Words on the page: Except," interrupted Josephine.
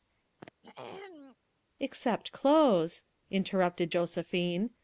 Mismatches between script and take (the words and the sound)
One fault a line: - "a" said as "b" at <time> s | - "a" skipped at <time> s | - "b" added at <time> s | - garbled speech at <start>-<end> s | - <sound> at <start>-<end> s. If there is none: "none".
- throat clearing at 0.4-1.4 s
- "clothes" added at 2.3 s